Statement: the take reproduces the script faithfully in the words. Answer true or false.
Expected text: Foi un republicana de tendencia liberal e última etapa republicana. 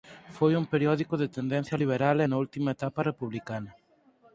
false